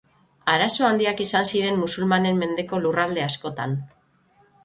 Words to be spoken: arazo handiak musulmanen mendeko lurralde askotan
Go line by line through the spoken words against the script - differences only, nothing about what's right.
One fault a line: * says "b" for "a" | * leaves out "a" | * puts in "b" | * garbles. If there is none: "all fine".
* puts in "izan ziren"